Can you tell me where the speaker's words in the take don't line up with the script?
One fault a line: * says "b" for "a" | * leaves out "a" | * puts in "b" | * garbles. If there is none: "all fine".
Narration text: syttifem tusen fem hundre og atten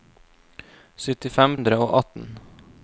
* leaves out "tusen fem"